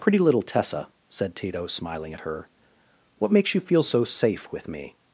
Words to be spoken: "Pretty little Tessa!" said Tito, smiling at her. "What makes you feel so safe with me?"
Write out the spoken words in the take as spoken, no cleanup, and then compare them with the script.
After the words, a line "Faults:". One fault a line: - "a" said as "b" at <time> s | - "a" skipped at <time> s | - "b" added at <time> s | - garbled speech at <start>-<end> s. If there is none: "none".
"Pretty little Tessa!" said Tito, smiling at her. "What makes you feel so safe with me?"
Faults:
none